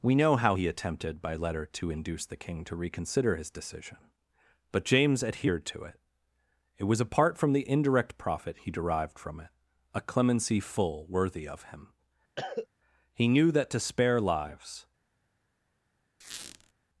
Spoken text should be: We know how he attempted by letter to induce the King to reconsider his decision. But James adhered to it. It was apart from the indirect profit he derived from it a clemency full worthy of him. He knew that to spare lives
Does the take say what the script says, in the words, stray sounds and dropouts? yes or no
no